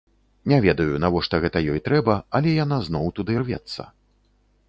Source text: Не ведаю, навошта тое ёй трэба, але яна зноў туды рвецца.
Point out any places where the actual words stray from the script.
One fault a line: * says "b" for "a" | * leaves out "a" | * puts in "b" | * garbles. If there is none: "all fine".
* says "гэта" for "тое"